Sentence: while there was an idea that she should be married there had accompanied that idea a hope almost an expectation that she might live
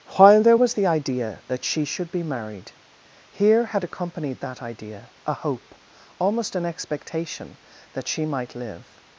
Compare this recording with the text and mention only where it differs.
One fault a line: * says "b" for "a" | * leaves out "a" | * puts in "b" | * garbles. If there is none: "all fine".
* says "the" for "an"
* says "here" for "there"